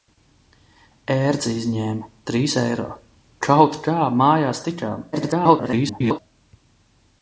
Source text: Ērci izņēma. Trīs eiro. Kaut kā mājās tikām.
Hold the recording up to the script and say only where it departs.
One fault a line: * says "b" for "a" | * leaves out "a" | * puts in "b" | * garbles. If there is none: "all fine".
* garbles